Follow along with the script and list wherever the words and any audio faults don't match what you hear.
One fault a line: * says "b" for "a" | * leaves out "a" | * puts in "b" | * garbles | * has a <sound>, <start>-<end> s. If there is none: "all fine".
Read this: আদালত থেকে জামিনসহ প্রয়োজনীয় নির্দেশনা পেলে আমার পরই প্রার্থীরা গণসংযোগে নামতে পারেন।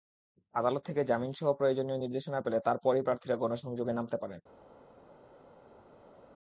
* says "তার" for "আমার"